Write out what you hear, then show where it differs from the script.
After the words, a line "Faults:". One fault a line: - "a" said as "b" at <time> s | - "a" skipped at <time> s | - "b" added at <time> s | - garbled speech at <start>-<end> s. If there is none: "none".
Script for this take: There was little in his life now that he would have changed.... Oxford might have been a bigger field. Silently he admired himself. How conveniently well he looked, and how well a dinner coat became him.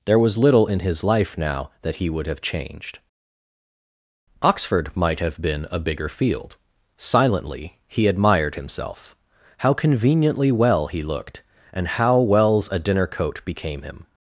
There was little in his life now that he would have changed.... Oxford might have been a bigger field. Silently he admired himself. How conveniently well he looked, and how wells a dinner coat became him.
Faults:
- "well" said as "wells" at 12.2 s